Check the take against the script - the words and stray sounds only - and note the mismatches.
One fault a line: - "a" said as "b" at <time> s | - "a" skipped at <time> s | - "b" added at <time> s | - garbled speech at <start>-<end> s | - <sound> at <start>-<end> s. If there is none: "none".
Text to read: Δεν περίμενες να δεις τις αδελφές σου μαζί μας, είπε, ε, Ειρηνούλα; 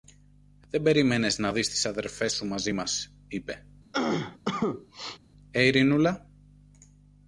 - cough at 3.9-5.2 s